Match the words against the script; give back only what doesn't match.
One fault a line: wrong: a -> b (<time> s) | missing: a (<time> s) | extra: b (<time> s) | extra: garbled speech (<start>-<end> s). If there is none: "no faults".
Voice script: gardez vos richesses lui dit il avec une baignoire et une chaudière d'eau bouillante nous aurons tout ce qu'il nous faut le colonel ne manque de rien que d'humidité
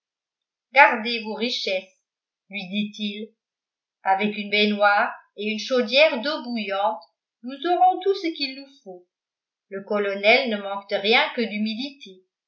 no faults